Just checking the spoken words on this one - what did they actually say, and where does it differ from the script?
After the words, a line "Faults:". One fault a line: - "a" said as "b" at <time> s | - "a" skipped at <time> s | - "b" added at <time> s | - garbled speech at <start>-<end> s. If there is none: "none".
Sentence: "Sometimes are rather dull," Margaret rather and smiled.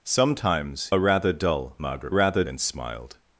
"Sometimes are rather dull," Margaret rather and smiled.
Faults:
none